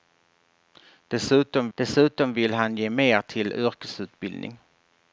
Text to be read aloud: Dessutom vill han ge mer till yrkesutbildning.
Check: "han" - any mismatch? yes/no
no